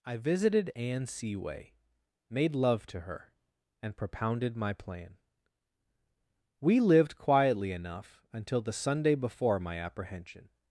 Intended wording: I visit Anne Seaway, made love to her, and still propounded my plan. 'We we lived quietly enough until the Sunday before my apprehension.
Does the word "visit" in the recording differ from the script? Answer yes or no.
yes